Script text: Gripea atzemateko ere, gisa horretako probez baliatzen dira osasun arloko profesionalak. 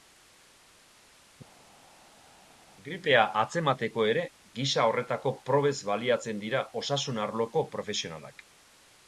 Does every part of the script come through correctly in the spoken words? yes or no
yes